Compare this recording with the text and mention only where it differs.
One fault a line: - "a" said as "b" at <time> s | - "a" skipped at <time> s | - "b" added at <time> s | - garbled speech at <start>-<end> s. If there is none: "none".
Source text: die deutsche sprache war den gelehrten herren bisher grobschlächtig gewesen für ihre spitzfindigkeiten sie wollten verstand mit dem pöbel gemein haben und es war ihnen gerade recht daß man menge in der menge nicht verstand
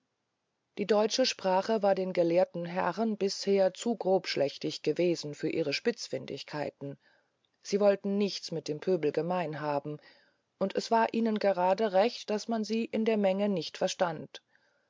- "zu" added at 3.8 s
- "verstand" said as "nichts" at 8.2 s
- "menge" said as "sie" at 12.6 s